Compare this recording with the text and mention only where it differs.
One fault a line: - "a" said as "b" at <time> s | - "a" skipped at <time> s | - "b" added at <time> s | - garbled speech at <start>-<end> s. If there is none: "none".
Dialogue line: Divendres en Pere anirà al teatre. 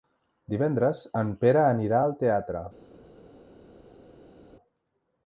none